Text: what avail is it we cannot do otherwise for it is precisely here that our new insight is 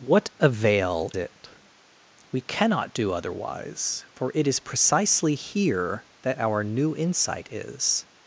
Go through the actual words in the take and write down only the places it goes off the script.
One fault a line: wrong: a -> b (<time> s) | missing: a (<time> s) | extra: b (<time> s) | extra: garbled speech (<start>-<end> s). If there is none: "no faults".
missing: is (1.1 s)